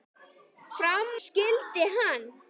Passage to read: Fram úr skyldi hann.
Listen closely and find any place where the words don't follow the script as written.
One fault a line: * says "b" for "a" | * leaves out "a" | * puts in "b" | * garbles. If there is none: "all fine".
* leaves out "úr"